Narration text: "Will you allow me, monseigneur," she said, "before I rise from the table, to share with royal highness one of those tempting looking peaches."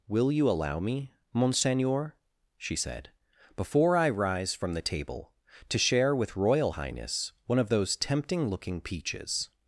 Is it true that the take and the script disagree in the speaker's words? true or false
false